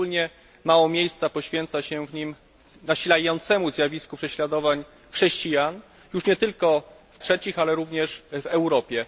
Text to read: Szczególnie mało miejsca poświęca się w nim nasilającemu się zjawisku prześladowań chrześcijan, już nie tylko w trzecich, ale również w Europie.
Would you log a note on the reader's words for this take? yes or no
no